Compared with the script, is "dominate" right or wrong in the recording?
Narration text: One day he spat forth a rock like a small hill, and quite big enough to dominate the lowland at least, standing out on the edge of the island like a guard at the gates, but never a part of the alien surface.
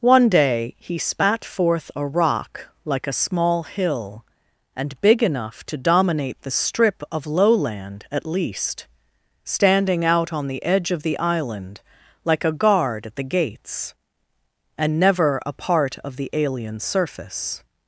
right